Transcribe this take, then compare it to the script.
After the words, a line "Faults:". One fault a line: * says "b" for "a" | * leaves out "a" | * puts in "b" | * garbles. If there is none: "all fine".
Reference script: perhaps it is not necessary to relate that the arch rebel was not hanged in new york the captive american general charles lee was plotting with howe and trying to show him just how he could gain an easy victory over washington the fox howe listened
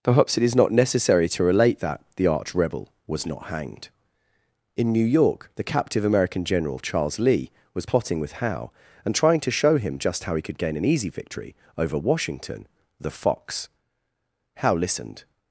perhaps it is not necessary to relate that the arch rebel was not hanged in new york the captive american general charles lee was plotting with howe and trying to show him just how he could gain an easy victory over washington the fox howe listened
Faults:
all fine